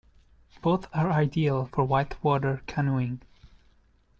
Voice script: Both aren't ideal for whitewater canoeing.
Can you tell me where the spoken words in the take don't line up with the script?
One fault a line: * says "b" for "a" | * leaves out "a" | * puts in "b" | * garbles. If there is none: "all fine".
* says "are" for "aren't"